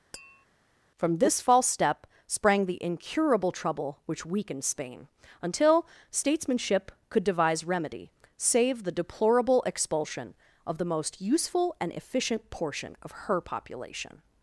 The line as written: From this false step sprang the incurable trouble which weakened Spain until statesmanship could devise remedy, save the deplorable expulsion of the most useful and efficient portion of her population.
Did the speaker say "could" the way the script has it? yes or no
yes